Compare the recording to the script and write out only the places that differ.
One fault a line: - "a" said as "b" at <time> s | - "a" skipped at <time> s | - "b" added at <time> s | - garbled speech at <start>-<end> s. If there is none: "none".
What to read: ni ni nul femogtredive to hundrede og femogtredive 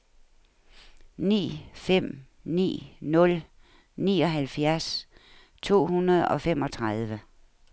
- "fem" added at 1.7 s
- "femogtredive" said as "nioghalvfjerds" at 4.0 s